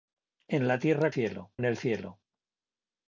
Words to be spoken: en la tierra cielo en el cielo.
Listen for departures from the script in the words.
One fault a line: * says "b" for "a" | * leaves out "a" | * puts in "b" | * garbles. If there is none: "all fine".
all fine